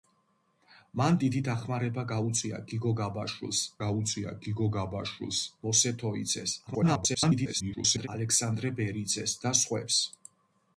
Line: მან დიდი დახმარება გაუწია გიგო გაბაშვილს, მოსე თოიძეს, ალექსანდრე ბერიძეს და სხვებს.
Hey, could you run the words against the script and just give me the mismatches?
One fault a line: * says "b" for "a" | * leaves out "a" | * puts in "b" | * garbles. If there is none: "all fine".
* puts in "გაუწია გიგო გაბაშვილს"
* garbles